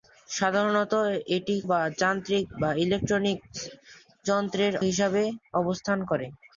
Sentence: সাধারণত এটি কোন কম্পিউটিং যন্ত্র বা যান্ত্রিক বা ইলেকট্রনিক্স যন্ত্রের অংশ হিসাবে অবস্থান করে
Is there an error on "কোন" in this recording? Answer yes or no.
yes